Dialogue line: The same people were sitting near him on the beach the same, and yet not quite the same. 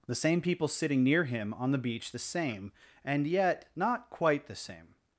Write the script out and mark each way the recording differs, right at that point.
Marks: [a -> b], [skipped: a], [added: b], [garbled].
The same people [skipped: were] sitting near him on the beach the same, and yet not quite the same.